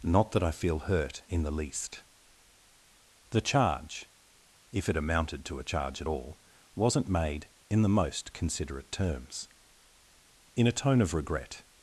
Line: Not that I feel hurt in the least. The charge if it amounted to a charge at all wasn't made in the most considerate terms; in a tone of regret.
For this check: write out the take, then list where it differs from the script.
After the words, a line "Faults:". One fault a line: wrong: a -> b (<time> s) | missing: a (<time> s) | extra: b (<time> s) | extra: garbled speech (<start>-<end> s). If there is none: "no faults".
Not that I feel hurt in the least. The charge if it amounted to a charge at all wasn't made in the most considerate terms; in a tone of regret.
Faults:
no faults